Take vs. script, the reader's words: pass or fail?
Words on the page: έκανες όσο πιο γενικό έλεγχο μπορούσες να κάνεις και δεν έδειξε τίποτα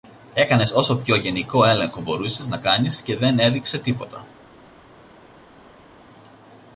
pass